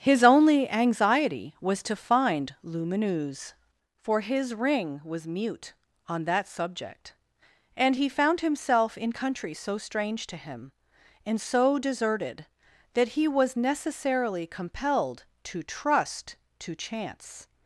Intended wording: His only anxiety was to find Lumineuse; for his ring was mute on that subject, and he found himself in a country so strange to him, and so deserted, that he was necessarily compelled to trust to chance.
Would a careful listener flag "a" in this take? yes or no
yes